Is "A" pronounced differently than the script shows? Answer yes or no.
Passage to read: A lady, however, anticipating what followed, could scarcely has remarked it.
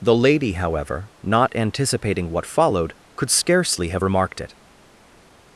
yes